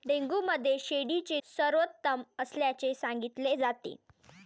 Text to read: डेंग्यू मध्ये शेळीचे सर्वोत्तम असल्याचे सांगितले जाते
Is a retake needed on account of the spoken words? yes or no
no